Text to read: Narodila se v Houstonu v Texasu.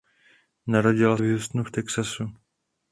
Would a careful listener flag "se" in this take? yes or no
yes